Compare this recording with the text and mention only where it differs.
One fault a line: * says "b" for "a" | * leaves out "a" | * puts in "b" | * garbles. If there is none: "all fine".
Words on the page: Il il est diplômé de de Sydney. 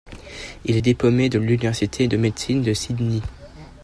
* leaves out "il"
* puts in "l'Université de médecine"